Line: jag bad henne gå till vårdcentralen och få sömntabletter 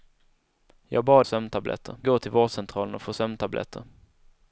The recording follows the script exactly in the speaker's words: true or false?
false